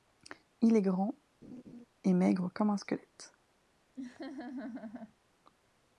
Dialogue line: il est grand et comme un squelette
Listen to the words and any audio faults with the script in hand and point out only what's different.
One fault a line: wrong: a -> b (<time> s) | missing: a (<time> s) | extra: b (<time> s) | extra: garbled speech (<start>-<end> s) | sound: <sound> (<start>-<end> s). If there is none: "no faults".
sound: laugh (1.4-1.9 s)
extra: maigre (2.1 s)
sound: laugh (4.0-5.2 s)